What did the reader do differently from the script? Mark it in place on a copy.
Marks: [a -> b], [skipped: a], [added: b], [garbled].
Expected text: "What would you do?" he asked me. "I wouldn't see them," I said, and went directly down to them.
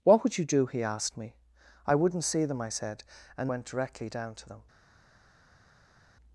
"What would you do?" he asked me. "I wouldn't see them," I said, and went directly down to them.